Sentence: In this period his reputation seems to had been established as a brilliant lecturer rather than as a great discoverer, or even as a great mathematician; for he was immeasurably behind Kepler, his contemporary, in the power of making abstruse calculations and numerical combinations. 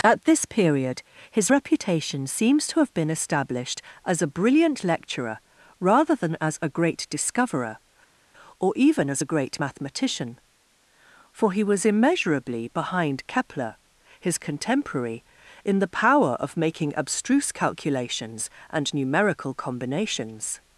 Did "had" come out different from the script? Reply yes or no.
yes